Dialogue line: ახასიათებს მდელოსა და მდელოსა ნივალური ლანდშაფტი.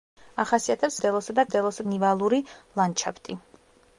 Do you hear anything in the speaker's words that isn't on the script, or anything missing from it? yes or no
no